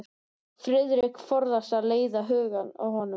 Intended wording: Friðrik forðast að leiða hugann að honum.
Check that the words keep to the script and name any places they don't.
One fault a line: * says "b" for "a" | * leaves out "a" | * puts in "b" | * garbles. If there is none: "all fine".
all fine